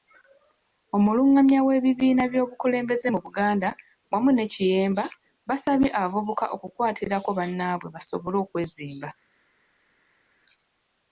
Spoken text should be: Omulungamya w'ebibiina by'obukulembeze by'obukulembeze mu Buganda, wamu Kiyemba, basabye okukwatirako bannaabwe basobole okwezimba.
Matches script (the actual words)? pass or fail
fail